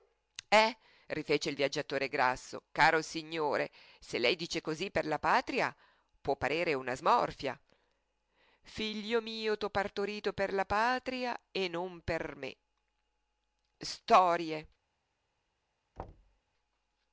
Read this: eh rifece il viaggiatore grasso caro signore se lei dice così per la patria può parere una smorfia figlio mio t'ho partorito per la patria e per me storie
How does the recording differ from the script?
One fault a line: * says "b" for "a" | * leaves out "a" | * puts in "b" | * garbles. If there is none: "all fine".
* puts in "non"